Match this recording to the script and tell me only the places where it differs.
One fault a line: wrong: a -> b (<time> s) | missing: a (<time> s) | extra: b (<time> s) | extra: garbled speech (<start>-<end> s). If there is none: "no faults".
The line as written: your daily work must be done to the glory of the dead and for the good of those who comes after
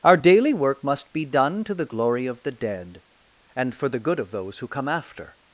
wrong: your -> our (0.0 s)
wrong: comes -> come (4.7 s)